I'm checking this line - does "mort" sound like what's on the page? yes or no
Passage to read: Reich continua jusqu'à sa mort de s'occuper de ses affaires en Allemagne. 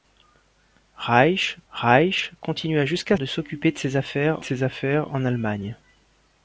no